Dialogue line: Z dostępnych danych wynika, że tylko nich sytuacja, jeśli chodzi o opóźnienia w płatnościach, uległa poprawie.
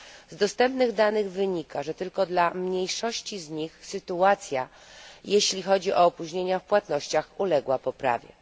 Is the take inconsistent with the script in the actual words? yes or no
yes